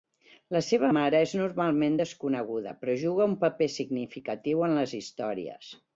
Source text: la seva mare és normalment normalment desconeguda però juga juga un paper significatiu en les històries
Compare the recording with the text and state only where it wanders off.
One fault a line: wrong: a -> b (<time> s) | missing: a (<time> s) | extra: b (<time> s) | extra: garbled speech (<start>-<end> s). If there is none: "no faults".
missing: normalment (1.9 s)
missing: juga (3.3 s)